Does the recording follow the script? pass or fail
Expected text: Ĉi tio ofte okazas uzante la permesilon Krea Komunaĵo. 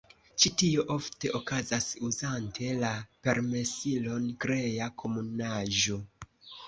pass